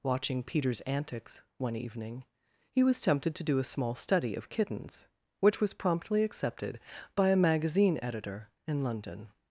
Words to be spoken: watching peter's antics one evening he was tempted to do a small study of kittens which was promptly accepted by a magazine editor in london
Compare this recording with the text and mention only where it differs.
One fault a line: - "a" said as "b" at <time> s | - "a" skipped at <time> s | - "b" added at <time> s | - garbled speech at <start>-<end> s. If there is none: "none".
none